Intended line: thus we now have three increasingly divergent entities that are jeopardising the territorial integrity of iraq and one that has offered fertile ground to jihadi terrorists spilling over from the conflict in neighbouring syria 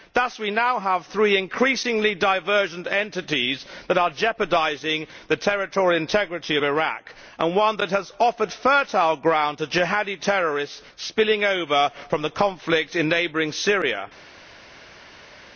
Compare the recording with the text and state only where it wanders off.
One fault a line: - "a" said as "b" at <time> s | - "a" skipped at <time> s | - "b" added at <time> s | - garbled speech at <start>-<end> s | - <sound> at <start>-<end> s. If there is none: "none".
none